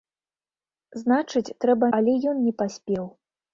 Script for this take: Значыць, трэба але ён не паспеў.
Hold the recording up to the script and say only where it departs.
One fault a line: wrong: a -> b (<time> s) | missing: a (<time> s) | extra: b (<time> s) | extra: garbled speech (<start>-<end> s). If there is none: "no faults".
no faults